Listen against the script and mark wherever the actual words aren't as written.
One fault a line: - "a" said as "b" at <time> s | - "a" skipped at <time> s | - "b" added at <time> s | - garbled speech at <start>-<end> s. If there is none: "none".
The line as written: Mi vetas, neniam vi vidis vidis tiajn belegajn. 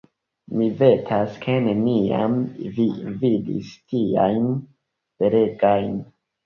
- "ke" added at 1.5 s
- "vidis" skipped at 3.8 s